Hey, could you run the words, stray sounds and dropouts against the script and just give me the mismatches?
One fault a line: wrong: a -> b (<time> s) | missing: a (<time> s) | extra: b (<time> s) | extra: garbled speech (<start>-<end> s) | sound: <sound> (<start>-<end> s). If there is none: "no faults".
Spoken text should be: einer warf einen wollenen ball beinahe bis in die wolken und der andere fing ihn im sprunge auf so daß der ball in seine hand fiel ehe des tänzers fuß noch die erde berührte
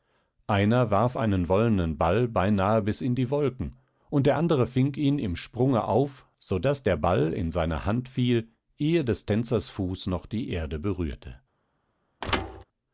sound: thud (12.2-12.6 s)